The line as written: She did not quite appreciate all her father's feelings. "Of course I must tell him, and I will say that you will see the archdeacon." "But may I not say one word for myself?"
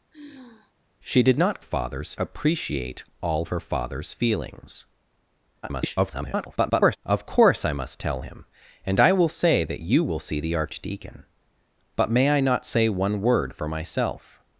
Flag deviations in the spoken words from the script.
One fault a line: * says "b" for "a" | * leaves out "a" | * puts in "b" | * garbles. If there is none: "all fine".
* says "father's" for "quite"
* garbles